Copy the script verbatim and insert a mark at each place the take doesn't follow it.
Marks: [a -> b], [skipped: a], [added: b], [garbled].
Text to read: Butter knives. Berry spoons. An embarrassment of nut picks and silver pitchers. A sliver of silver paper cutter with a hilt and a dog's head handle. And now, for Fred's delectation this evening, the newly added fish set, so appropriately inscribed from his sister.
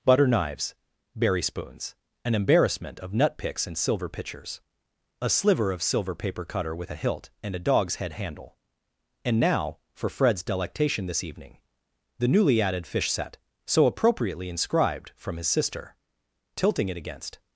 Butter knives. Berry spoons. An embarrassment of nut picks and silver pitchers. A sliver of silver paper cutter with a hilt and a dog's head handle. And now, for Fred's delectation this evening, the newly added fish set, so appropriately inscribed from his sister. [added: Tilting it against]